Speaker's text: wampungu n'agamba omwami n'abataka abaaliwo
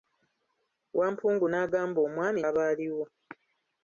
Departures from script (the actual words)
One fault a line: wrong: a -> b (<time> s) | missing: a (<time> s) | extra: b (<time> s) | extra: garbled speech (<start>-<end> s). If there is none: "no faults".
missing: n'abataka (2.4 s)